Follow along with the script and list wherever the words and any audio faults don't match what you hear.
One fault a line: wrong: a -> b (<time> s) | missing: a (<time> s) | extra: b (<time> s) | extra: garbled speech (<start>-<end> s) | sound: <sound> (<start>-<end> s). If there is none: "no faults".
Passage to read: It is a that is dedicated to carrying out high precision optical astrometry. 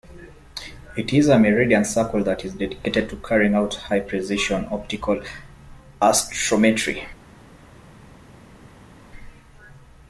extra: meridian circle (1.4 s)